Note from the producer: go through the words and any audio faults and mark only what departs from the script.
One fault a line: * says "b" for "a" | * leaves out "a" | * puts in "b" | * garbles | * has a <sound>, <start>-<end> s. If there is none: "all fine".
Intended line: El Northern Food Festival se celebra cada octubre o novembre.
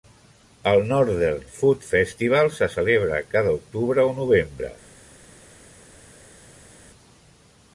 all fine